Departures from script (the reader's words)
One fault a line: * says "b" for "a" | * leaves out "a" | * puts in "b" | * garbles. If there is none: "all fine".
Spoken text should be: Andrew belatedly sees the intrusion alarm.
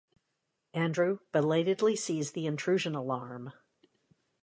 all fine